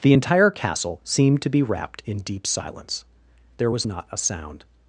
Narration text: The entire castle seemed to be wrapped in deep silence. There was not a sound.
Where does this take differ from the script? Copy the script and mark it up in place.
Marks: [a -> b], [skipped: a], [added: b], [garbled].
The entire castle seemed to be wrapped in deep silence. There was not a sound.